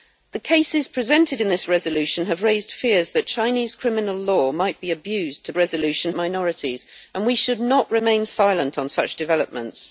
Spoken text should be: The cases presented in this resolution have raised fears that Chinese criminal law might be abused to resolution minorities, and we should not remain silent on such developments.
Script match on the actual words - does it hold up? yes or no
yes